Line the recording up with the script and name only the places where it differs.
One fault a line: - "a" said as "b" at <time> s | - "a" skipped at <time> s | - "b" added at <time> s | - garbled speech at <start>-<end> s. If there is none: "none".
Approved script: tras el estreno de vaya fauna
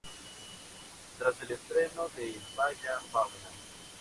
none